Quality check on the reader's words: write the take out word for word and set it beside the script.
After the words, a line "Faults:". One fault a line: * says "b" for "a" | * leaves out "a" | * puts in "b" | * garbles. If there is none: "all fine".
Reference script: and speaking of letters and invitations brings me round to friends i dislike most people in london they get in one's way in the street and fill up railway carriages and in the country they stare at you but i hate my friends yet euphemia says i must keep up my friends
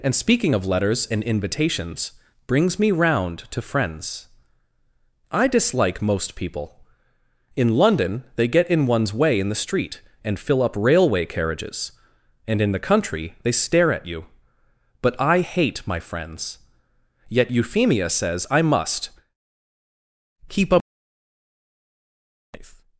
and speaking of letters and invitations brings me round to friends i dislike most people in london they get in one's way in the street and fill up railway carriages and in the country they stare at you but i hate my friends yet euphemia says i must keep up
Faults:
* leaves out "my friends"